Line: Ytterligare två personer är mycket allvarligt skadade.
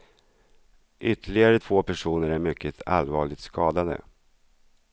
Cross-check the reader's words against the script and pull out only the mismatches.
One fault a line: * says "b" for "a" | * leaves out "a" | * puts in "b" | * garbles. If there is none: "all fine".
all fine